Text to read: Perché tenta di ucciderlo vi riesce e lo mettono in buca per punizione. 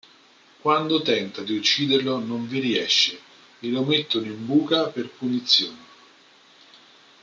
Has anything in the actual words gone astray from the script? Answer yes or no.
yes